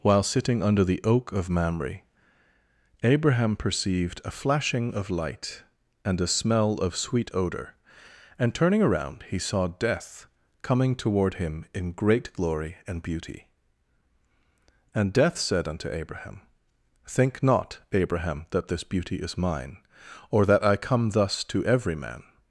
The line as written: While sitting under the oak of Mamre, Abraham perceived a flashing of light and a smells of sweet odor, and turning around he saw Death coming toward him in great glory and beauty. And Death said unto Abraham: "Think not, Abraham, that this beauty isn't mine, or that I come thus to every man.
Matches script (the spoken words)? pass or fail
fail